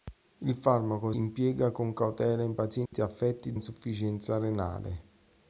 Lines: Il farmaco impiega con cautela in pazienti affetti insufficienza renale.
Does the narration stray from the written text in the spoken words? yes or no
no